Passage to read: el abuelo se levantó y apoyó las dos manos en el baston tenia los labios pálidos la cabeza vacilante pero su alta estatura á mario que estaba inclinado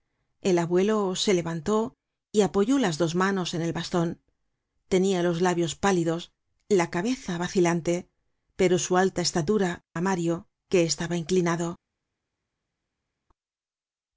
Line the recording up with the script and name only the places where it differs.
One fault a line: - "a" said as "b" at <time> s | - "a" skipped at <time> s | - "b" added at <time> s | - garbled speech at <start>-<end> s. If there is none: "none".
none